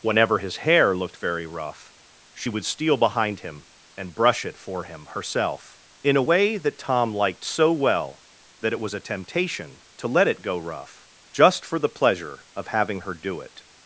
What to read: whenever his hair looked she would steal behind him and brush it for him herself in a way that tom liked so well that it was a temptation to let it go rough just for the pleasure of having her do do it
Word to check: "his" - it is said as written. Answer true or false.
true